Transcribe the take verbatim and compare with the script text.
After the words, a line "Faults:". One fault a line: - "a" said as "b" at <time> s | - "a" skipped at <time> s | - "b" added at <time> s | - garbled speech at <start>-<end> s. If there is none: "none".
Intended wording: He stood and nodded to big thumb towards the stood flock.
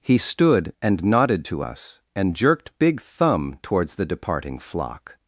He stood and nodded to us, and jerked big thumb towards the departing flock.
Faults:
- "us and jerked" added at 1.6 s
- "stood" said as "departing" at 4.1 s